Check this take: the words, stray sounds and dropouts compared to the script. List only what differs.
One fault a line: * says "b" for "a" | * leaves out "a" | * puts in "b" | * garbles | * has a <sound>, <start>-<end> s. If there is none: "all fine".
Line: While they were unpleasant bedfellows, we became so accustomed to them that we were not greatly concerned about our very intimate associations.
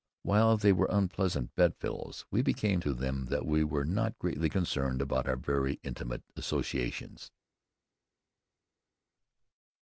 * leaves out "so accustomed"